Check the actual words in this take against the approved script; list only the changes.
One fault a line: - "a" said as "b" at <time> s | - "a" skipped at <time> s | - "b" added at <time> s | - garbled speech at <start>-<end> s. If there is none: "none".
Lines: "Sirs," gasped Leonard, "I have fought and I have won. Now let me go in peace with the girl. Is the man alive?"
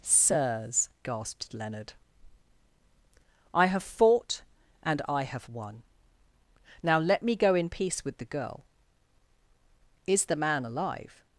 none